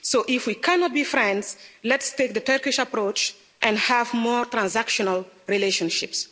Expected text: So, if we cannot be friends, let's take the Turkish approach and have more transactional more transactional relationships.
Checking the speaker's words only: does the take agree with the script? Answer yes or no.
no